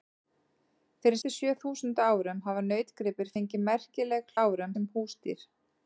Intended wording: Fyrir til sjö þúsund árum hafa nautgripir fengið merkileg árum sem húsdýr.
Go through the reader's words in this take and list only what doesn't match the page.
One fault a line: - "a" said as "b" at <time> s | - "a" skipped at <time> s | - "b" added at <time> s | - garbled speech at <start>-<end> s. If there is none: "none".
none